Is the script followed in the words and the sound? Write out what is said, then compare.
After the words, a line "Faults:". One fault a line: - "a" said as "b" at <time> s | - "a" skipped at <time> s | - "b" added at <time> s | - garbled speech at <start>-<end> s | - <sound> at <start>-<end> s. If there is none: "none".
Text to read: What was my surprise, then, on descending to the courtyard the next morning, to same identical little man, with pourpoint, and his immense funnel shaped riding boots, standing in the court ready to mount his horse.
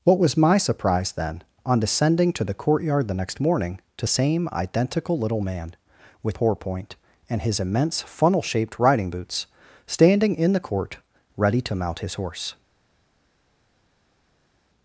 What was my surprise, then, on descending to the courtyard the next morning, to same identical little man, with pourpoint, and his immense funnel shaped riding boots, standing in the court ready to mount his horse.
Faults:
none